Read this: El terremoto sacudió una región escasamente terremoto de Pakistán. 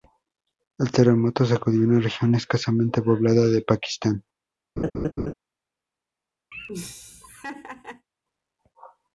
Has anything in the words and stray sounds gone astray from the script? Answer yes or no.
yes